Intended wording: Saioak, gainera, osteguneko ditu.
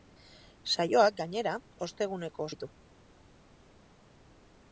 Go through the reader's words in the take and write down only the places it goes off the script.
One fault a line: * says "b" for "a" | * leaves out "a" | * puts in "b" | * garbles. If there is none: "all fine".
all fine